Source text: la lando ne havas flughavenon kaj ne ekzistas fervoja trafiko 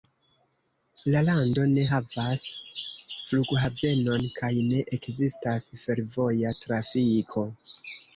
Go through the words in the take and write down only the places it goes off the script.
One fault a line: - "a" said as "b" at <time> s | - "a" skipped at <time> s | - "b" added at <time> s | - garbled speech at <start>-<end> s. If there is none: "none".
none